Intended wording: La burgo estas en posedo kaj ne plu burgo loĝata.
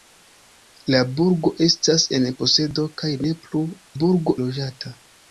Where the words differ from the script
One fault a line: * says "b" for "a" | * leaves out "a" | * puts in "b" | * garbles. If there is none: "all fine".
all fine